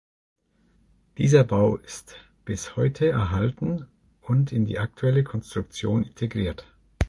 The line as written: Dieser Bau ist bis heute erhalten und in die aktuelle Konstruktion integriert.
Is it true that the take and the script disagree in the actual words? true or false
false